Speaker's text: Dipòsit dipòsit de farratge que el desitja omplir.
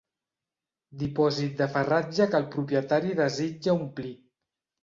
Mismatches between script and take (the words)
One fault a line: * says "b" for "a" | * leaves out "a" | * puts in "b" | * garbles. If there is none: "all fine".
* leaves out "dipòsit"
* puts in "propietari"